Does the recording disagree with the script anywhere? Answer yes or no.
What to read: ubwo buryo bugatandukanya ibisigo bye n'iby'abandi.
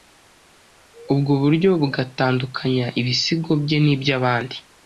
no